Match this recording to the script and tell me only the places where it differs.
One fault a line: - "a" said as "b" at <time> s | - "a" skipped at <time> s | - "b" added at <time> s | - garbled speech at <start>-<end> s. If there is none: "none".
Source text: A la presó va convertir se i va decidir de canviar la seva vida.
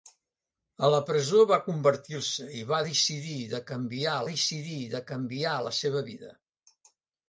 - "decidir de canviar" added at 4.3 s